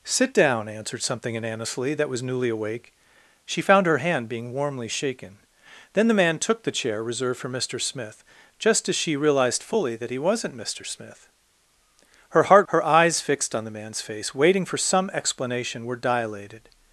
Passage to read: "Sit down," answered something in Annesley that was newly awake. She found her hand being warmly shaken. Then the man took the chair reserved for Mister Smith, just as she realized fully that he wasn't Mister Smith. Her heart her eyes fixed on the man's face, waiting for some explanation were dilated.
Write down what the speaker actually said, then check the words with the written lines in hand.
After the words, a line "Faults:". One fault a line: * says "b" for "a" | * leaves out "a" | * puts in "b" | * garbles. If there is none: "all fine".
"Sit down," answered something in Annesley that was newly awake. She found her hand being warmly shaken. Then the man took the chair reserved for Mister Smith, just as she realized fully that he wasn't Mister Smith. Her heart her eyes fixed on the man's face, waiting for some explanation were dilated.
Faults:
all fine